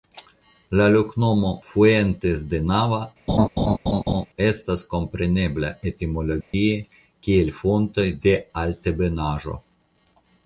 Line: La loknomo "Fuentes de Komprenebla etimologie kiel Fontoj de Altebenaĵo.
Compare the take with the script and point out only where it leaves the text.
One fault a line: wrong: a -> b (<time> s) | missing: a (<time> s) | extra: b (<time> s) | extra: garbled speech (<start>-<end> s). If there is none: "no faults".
extra: Nava estas (2.7 s)